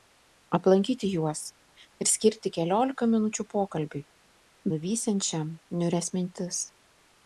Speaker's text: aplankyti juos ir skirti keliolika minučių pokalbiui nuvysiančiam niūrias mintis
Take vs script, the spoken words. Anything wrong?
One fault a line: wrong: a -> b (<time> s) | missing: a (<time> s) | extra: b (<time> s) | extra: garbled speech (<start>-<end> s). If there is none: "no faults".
no faults